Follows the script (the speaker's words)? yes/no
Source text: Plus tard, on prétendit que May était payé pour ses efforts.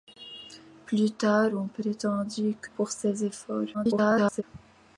no